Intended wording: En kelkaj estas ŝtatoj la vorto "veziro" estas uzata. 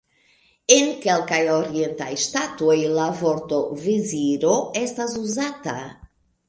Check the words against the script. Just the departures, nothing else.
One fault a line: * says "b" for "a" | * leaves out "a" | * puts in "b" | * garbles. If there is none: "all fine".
* says "orientaj" for "estas"